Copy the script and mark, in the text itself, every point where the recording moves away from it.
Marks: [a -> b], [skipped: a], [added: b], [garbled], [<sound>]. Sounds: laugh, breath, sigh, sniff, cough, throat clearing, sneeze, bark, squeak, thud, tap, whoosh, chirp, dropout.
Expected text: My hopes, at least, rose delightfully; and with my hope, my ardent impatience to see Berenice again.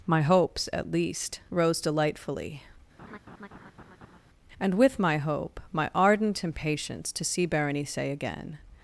My hopes, at least, rose delightfully; [laugh] and with my hope, my ardent impatience to see Berenice again.